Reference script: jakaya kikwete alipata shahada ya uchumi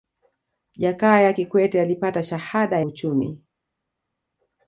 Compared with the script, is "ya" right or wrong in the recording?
wrong